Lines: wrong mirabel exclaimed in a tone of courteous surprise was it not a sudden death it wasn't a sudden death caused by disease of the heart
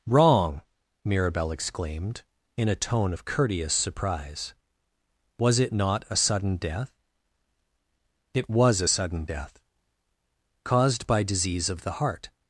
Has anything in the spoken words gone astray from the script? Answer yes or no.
yes